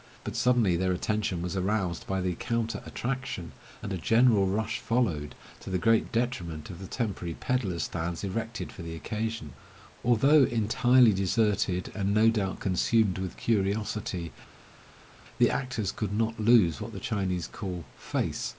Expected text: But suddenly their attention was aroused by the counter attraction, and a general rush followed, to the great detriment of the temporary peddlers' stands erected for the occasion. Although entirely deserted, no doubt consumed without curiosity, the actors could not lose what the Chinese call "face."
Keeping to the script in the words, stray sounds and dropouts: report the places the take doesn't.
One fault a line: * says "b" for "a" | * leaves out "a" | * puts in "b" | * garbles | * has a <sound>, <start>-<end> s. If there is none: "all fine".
* puts in "and"
* says "with" for "without"